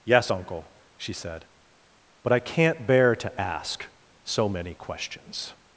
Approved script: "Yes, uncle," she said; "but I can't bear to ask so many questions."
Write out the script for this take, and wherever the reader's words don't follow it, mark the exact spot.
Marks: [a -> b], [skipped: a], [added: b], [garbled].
"Yes, uncle," she said; "but I can't bear to ask so many questions."